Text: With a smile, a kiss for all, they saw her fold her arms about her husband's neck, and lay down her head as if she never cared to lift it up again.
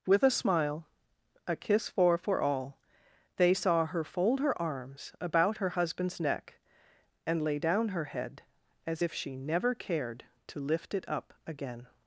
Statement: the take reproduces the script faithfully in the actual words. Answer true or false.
false